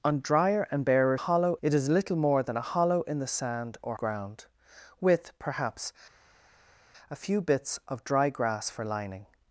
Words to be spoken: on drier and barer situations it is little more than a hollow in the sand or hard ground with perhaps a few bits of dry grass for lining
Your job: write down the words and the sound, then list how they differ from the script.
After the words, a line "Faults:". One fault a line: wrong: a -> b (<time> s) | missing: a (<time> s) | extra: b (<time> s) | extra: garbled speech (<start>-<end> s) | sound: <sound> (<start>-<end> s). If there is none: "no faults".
on drier and barer hollow it is little more than a hollow in the sand or ground with perhaps a few bits of dry grass for lining
Faults:
wrong: situations -> hollow (1.2 s)
missing: hard (3.9 s)